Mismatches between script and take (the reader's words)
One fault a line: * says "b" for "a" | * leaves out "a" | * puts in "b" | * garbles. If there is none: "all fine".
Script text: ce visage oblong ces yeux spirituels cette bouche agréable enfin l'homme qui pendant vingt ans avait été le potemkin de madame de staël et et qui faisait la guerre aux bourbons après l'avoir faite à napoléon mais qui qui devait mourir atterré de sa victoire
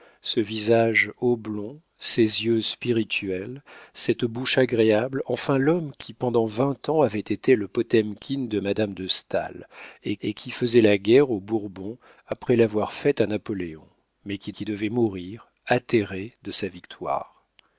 all fine